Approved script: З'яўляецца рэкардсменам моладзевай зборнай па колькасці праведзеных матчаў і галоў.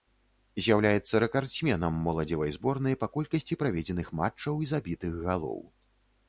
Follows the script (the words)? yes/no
no